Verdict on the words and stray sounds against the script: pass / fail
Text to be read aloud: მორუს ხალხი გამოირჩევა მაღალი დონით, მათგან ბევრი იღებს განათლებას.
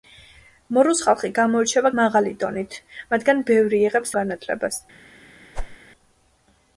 fail